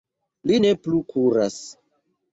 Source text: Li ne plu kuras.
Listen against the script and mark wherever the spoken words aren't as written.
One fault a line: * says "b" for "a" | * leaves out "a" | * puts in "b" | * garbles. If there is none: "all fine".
all fine